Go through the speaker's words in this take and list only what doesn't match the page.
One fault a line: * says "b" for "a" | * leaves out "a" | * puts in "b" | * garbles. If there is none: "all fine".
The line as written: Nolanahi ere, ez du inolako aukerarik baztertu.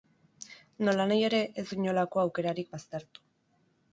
all fine